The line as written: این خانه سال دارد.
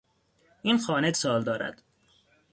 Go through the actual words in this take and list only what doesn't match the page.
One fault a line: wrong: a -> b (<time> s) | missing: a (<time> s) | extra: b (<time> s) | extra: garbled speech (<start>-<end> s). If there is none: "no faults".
no faults